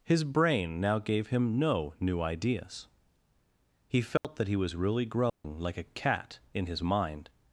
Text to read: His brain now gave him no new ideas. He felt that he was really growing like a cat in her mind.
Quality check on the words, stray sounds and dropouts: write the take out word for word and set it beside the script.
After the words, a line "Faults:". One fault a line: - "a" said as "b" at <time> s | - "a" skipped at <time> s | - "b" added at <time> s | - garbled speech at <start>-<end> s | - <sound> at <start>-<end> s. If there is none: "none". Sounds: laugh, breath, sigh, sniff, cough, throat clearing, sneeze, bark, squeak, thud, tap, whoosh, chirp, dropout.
His brain now gave him no new ideas. He felt that he was really growing like a cat in his mind.
Faults:
- dropout at 4.2-4.2 s
- dropout at 5.3-5.4 s
- "her" said as "his" at 6.7 s